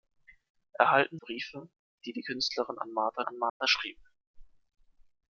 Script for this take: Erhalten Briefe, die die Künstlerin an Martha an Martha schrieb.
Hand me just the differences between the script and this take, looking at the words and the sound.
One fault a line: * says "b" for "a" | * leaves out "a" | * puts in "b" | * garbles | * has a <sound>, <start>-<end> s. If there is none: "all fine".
* has a dropout, 3.5-3.6 s